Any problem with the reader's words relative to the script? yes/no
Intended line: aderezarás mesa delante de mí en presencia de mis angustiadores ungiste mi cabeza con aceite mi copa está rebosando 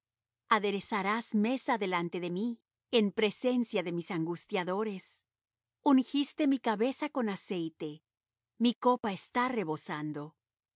no